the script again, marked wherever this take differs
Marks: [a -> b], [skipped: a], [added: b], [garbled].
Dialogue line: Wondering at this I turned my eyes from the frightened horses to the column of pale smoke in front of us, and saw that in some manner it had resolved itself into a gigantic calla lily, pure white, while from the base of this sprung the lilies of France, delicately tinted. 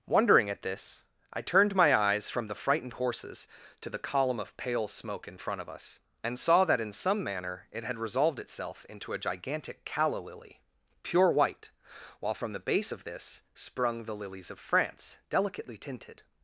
Wondering at this I turned my eyes from the frightened horses to the column of pale smoke in front of us, and saw that in some manner it had resolved itself into a gigantic calla lily, pure white, while from the base of this sprung the lilies of France, delicately tinted.